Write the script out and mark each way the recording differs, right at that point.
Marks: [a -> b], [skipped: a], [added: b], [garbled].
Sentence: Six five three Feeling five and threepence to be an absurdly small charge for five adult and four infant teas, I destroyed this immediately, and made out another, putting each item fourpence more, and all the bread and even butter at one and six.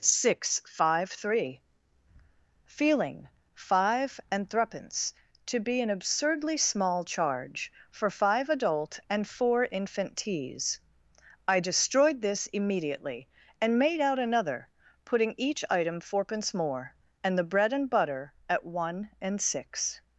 Six five three Feeling five and threepence to be an absurdly small charge for five adult and four infant teas, I destroyed this immediately, and made out another, putting each item fourpence more, and [skipped: all] the bread and [skipped: even] butter at one and six.